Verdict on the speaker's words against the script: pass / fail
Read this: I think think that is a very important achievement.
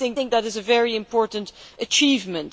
pass